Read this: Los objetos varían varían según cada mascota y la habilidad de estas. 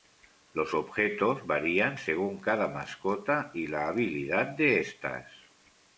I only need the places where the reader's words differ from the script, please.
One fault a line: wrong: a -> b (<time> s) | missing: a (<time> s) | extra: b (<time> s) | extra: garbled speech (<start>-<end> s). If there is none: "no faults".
missing: varían (2.0 s)